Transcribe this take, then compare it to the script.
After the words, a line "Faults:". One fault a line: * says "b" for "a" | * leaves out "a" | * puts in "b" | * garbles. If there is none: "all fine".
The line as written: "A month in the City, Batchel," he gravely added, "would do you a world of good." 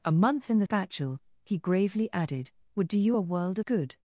"A month in the Batchel," he gravely added, "would do you a world good."
Faults:
* leaves out "City"
* leaves out "of"